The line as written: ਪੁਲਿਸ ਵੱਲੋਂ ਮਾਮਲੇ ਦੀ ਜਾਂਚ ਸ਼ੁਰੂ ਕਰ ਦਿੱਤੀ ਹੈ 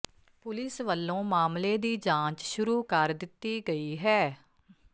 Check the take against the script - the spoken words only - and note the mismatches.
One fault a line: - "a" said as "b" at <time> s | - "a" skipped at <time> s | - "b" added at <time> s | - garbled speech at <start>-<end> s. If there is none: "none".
- "ਗਈ" added at 3.7 s